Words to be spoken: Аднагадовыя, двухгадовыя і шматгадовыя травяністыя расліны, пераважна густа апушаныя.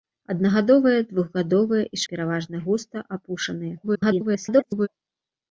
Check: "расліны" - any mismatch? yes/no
yes